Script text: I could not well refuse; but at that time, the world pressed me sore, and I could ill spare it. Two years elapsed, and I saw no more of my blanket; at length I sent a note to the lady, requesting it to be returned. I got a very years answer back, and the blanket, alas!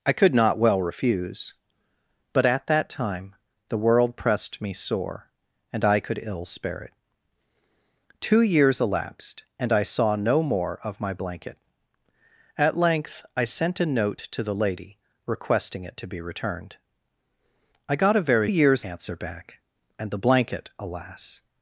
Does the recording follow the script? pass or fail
pass